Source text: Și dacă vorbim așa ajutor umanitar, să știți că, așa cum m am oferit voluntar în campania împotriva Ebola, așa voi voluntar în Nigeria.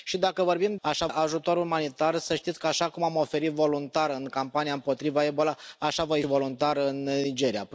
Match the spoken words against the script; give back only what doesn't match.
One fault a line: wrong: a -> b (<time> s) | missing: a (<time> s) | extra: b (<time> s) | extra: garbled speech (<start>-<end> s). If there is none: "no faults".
no faults